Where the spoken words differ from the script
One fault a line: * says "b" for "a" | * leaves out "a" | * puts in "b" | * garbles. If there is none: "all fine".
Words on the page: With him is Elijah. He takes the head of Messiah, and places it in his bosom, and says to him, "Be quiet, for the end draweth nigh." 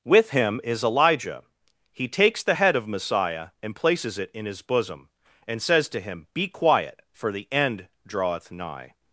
all fine